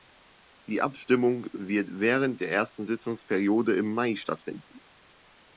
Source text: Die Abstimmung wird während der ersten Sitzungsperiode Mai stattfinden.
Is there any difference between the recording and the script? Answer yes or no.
yes